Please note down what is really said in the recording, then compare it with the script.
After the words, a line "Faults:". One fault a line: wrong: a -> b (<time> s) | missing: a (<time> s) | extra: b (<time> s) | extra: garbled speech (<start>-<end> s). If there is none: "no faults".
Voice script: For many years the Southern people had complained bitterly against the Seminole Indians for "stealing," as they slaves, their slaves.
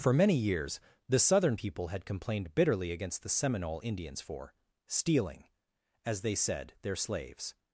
For many years the Southern people had complained bitterly against the Seminole Indians for "stealing," as they said, their slaves.
Faults:
wrong: slaves -> said (6.3 s)